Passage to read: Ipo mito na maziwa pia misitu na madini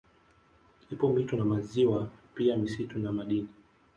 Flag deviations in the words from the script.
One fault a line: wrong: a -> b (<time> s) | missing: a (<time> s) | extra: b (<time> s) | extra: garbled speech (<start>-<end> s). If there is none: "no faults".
no faults